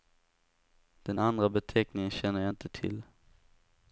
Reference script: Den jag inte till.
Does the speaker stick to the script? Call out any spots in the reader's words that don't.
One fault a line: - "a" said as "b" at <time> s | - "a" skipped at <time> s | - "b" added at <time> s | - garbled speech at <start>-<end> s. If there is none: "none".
- "andra beteckningen känner" added at 1.2 s